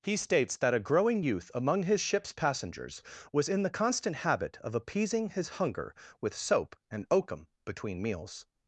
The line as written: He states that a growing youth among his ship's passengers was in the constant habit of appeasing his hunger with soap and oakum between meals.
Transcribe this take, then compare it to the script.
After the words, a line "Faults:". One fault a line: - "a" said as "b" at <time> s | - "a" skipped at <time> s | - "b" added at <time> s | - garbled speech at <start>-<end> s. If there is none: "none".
He states that a growing youth among his ship's passengers was in the constant habit of appeasing his hunger with soap and oakum between meals.
Faults:
none